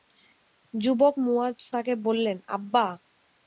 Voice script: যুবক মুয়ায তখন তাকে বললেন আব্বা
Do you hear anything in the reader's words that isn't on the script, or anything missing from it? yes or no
yes